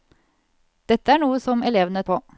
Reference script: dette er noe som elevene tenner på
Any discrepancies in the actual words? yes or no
yes